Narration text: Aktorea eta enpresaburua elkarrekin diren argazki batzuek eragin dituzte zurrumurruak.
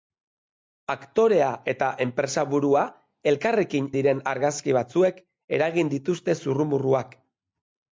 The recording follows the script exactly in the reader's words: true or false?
true